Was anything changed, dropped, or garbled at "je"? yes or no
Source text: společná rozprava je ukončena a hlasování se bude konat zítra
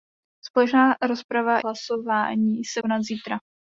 yes